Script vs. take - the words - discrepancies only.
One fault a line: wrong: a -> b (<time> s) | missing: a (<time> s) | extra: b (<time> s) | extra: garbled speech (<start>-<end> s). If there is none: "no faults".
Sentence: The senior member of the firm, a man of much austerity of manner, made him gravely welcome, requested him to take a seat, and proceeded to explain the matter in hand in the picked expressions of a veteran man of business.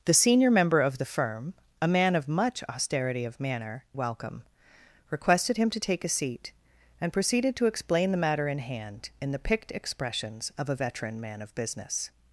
missing: made him gravely (3.9 s)